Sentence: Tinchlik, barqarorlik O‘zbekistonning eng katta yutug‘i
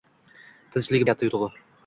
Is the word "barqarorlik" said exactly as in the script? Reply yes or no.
no